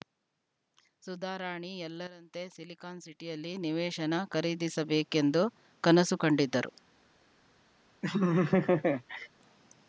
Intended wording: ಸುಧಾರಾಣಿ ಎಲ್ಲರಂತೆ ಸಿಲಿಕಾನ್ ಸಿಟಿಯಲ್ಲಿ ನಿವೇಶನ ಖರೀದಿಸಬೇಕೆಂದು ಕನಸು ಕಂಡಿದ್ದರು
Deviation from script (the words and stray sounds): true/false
true